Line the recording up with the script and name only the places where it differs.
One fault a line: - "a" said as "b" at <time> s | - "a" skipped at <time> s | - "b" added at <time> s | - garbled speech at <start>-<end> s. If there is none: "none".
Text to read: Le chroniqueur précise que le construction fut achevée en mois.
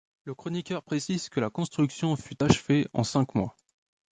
- "le" said as "la" at 1.4 s
- "cinq" added at 3.0 s